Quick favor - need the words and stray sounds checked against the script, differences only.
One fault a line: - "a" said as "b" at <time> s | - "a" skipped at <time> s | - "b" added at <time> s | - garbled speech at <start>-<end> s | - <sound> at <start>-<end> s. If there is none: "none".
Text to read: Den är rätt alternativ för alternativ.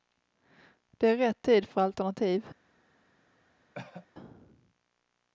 - "Den" said as "Det" at 0.9 s
- "alternativ" said as "tid" at 1.4 s
- cough at 3.7-4.1 s